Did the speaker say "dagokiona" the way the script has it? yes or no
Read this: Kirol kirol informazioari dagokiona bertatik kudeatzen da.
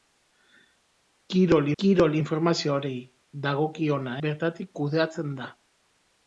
yes